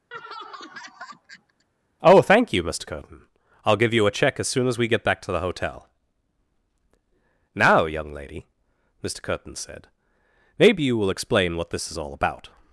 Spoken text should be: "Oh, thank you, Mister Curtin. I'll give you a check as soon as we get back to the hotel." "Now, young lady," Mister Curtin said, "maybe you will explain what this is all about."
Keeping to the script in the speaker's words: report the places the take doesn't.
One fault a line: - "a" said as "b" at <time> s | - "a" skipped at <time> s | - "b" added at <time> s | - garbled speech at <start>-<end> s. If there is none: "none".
none